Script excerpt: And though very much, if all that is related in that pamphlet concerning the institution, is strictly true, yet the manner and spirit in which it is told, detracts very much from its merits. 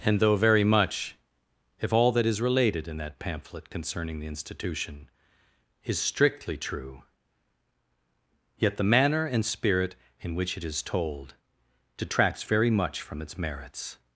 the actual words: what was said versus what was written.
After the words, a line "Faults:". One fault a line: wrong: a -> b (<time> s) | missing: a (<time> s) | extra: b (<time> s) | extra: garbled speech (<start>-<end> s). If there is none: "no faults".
And though very much, if all that is related in that pamphlet concerning the institution, is strictly true, yet the manner and spirit in which it is told, detracts very much from its merits.
Faults:
no faults